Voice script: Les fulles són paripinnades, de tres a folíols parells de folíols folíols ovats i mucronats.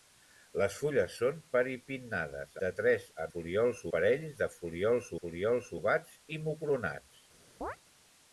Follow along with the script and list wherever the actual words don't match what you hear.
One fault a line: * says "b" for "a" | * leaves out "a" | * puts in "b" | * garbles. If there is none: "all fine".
all fine